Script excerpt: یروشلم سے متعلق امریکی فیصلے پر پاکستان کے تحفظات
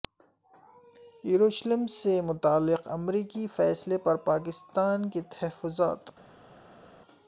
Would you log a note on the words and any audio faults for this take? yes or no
no